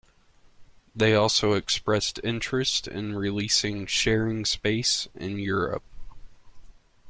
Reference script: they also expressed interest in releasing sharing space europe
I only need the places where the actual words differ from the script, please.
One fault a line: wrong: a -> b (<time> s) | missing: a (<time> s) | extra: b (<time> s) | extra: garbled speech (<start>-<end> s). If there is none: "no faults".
extra: in (5.1 s)